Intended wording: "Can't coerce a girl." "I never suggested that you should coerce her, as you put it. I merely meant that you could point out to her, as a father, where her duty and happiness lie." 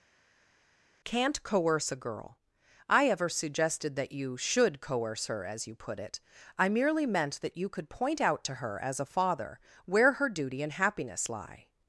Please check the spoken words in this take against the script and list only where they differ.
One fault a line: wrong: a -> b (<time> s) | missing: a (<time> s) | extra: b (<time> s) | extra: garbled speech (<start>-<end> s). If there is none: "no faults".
wrong: never -> ever (3.1 s)